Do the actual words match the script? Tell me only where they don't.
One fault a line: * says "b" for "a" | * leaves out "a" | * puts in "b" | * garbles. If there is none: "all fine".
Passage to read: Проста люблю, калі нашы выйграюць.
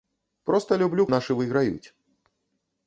* leaves out "калі"